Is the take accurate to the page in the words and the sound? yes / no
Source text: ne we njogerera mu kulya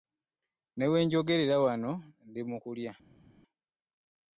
no